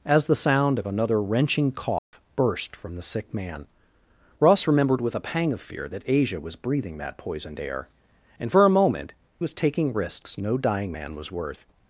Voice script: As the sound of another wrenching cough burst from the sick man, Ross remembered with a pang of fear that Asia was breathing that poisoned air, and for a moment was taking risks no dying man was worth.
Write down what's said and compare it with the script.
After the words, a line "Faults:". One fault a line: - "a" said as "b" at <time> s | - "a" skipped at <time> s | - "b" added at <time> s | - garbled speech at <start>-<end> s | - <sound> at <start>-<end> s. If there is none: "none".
As the sound of another wrenching cough burst from the sick man, Ross remembered with a pang of fear that Asia was breathing that poisoned air, and for a moment was taking risks no dying man was worth.
Faults:
- dropout at 2.0-2.1 s